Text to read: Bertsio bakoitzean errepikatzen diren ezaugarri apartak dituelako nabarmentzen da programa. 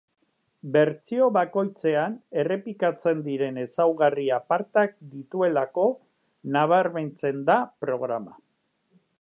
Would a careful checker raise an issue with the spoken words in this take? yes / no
no